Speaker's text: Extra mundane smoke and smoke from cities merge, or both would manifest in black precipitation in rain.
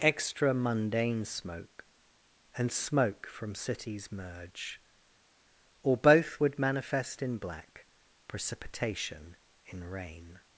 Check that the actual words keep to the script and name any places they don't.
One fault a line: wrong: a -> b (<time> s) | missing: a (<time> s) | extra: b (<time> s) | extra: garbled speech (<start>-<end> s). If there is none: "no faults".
no faults